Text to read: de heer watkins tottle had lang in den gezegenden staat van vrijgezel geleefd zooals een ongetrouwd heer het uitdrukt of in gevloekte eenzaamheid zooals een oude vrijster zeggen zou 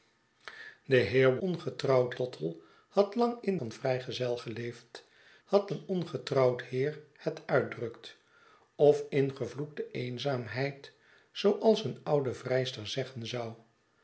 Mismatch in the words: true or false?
true